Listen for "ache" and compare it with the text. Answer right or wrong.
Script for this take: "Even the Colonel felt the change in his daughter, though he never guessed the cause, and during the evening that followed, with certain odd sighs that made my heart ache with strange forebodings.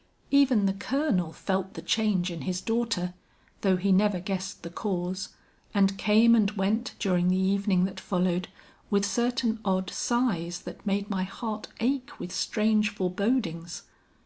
right